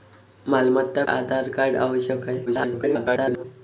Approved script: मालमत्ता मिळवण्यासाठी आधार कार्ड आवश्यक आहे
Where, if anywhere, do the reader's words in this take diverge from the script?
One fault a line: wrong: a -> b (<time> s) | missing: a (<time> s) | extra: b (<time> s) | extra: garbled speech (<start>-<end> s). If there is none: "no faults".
missing: मिळवण्यासाठी (1.0 s)
extra: garbled speech (2.5-3.4 s)